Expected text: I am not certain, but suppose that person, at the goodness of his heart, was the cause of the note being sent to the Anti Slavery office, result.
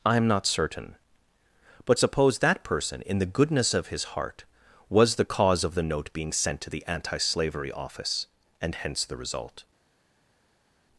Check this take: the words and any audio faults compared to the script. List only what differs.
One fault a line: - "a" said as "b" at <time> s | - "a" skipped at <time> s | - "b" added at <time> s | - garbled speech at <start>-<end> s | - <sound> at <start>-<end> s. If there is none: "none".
- "at" said as "in" at 3.1 s
- "and hence the" added at 8.6 s